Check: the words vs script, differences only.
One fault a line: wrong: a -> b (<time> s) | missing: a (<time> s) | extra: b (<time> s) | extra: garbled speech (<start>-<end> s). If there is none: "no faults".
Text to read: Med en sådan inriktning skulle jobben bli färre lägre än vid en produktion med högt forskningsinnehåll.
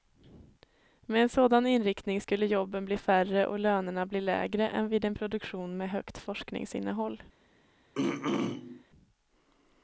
extra: och lönerna bli (3.5 s)